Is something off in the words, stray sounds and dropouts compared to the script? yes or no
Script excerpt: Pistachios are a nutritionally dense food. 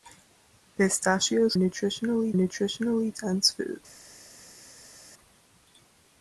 yes